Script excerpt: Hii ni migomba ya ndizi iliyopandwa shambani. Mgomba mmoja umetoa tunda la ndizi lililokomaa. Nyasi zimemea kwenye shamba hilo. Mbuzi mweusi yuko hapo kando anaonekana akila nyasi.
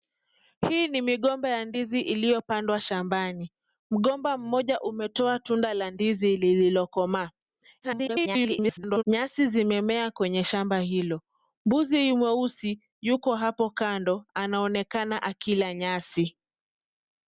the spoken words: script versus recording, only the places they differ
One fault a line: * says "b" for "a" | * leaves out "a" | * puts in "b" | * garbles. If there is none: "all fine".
* garbles